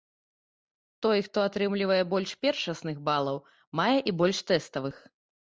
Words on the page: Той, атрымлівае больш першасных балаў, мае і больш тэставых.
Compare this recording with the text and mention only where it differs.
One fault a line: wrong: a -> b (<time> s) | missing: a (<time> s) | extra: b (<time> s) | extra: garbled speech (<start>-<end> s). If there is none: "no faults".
extra: хто (1.3 s)